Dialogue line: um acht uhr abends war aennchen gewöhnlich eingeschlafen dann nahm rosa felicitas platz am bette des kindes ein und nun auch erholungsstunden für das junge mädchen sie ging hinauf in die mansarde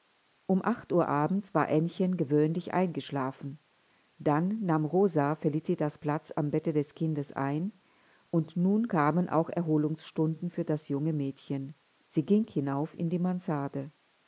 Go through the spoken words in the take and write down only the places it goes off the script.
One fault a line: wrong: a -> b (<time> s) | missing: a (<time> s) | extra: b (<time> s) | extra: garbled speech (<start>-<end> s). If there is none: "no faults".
extra: kamen (8.9 s)